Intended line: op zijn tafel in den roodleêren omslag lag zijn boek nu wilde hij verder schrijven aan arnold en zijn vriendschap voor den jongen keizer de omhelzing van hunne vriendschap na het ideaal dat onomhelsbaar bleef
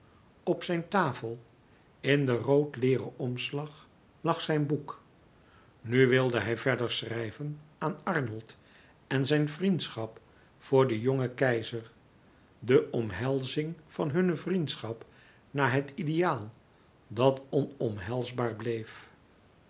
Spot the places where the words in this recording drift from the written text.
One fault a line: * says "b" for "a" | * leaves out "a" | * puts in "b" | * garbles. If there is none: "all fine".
all fine